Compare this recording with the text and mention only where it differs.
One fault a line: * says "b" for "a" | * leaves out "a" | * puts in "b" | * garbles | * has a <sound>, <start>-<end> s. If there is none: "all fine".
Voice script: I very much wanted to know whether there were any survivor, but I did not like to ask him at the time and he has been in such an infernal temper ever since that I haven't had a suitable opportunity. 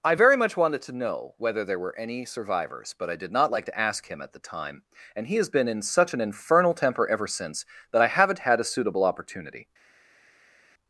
* says "survivors" for "survivor"